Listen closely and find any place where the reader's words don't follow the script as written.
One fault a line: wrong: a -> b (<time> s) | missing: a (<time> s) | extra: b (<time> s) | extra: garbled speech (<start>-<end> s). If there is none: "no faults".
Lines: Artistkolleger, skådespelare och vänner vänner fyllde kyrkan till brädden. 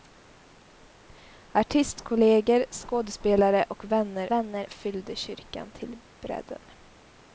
no faults